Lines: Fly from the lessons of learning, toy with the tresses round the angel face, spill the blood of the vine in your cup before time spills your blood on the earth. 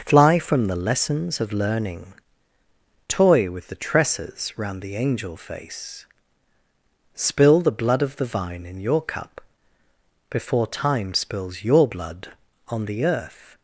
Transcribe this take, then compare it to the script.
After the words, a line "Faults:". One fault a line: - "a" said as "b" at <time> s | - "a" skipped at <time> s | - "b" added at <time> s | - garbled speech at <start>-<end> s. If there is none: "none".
Fly from the lessons of learning, toy with the tresses round the angel face, spill the blood of the vine in your cup before time spills your blood on the earth.
Faults:
none